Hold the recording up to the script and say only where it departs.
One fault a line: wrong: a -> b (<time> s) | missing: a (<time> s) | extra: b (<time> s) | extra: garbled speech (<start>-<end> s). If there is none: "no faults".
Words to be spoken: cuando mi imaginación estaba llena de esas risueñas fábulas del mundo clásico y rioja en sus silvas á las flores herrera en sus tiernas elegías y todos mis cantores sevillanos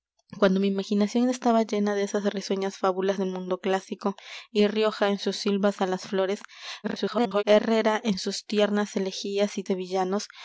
extra: garbled speech (6.8-7.4 s)
missing: todos mis cantores (9.6 s)